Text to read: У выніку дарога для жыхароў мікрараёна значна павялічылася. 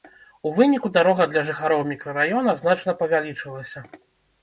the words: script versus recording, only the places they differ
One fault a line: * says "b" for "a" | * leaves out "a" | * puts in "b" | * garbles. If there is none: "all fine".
all fine